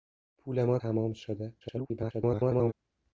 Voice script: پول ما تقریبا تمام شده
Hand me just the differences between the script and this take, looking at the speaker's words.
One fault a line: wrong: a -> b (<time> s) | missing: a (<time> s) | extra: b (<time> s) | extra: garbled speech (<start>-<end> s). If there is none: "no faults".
missing: تقریبا (0.8 s)
extra: garbled speech (1.6-2.7 s)